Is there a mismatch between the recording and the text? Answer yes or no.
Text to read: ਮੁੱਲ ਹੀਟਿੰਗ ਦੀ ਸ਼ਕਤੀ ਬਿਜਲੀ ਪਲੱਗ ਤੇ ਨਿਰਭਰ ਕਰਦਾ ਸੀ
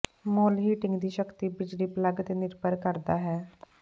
yes